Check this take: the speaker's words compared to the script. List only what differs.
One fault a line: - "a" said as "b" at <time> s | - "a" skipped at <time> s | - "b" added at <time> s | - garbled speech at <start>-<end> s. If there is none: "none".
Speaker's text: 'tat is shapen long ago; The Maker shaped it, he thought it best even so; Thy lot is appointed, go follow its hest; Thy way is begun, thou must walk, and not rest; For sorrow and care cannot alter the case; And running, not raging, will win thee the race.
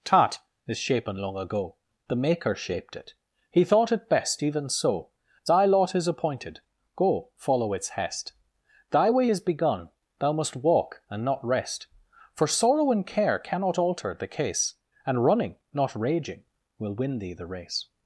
none